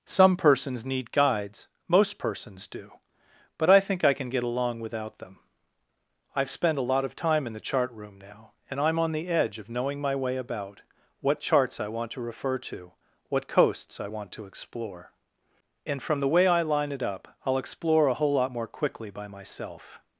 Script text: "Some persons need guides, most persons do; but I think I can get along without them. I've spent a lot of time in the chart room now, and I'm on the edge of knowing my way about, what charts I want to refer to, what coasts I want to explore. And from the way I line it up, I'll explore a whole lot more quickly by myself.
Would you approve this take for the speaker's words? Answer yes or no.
yes